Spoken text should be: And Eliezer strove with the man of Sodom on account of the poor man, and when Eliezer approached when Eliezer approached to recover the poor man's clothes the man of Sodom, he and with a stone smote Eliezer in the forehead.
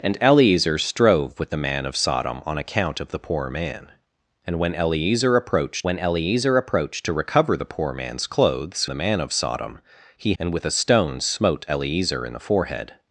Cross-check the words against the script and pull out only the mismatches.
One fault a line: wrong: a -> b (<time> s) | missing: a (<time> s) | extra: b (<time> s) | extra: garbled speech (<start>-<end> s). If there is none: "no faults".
no faults